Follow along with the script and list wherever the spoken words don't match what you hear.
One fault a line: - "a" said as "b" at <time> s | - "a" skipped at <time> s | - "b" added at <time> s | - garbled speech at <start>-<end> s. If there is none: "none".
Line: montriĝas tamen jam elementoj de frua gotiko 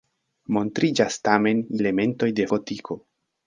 - "jam" skipped at 1.6 s
- "frua" skipped at 2.5 s